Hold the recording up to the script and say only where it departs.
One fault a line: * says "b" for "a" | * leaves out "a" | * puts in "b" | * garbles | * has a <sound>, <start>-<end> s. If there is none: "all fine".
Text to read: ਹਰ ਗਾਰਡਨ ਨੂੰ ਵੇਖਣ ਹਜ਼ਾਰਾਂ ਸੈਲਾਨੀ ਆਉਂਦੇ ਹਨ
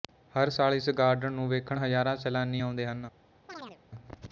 * puts in "ਸਾਲ ਇਸ"
* has a chirp, 3.5-3.8 s